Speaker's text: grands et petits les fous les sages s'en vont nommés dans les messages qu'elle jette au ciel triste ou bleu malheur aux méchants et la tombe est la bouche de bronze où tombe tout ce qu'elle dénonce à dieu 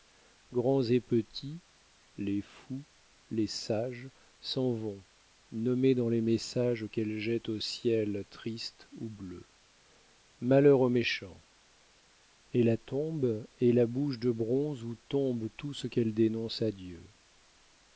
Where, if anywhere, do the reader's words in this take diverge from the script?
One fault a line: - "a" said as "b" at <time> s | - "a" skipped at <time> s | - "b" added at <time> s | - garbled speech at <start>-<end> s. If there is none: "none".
none